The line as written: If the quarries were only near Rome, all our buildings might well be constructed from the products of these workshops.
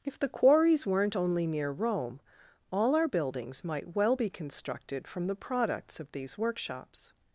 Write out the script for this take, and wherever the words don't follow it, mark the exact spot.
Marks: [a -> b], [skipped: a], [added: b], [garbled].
If the quarries [were -> weren't] only near Rome, all our buildings might well be constructed from the products of these workshops.